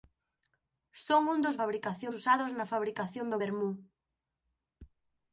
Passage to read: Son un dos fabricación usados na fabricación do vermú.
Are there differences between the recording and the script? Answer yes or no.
no